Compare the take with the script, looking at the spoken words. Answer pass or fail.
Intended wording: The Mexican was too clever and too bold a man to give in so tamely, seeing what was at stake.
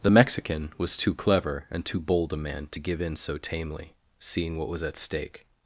pass